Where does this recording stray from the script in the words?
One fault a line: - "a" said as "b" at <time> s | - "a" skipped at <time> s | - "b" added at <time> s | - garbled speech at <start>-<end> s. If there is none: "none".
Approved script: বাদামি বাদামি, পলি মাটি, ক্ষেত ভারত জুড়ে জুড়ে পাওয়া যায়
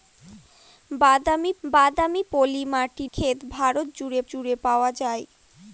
none